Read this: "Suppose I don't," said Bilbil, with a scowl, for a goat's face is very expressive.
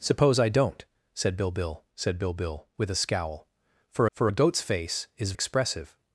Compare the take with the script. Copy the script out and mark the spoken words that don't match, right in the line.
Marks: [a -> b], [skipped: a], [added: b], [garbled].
"Suppose I don't," said Bilbil, [added: said Bilbil] with a scowl, for [added: for] a goat's face is [skipped: very] expressive.